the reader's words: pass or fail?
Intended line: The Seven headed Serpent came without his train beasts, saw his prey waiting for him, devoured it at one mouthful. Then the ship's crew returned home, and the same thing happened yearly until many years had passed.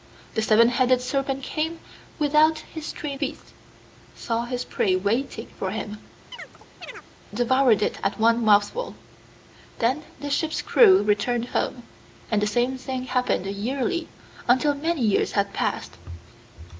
pass